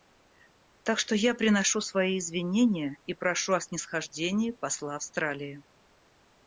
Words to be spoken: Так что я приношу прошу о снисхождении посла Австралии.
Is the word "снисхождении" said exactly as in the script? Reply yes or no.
yes